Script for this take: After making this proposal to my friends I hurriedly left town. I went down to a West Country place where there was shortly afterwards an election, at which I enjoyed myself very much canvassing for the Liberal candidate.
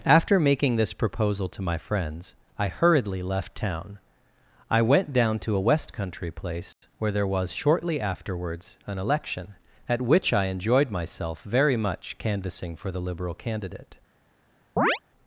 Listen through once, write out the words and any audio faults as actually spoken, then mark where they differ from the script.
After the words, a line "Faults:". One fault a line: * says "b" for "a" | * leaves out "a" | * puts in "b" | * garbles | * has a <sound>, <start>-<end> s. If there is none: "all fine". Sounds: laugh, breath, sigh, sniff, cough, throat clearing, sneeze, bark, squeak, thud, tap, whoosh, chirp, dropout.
After making this proposal to my friends I hurriedly left town. I went down to a West Country place where there was shortly afterwards an election, at which I enjoyed myself very much canvassing for the Liberal candidate.
Faults:
* has a dropout, 6.7-6.8 s
* has a chirp, 14.8-15.0 s